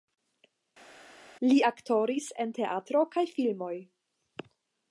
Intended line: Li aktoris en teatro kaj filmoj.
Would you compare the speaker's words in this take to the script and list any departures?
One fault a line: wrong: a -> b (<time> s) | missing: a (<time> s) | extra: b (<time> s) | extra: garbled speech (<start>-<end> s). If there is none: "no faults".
no faults